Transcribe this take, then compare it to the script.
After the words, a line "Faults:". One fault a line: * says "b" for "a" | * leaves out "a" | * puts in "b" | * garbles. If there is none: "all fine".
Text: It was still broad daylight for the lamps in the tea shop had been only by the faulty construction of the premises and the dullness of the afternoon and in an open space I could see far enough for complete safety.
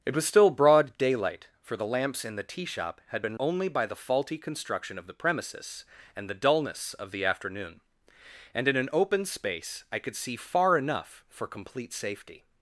It was still broad daylight for the lamps in the tea shop had been only by the faulty construction of the premises and the dullness of the afternoon and in an open space I could see far enough for complete safety.
Faults:
all fine